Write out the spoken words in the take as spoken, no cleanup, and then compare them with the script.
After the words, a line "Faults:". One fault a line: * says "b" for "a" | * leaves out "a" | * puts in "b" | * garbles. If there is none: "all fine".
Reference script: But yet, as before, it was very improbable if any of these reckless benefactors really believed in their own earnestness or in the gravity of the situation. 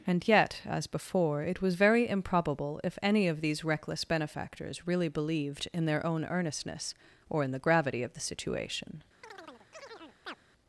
And yet, as before, it was very improbable if any of these reckless benefactors really believed in their own earnestness or in the gravity of the situation.
Faults:
* says "And" for "But"